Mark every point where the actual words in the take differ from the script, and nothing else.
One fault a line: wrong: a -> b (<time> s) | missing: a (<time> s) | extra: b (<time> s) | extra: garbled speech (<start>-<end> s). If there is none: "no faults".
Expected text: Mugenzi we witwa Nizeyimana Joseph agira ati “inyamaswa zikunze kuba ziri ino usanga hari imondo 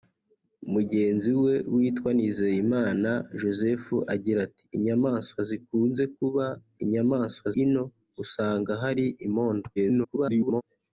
wrong: ziri -> inyamaswa (6.8 s)
extra: garbled speech (9.8-10.6 s)